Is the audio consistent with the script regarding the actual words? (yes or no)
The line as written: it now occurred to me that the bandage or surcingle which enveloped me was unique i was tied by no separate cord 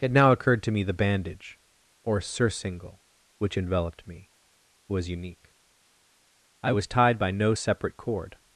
no